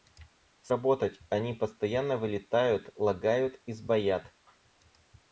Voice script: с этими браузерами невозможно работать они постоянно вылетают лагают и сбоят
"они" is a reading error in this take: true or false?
false